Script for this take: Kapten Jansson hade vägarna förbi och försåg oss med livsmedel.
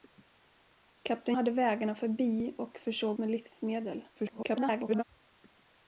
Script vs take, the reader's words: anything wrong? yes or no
yes